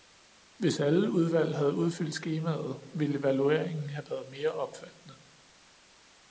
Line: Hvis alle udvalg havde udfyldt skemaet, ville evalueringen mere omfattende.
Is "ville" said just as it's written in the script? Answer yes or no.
yes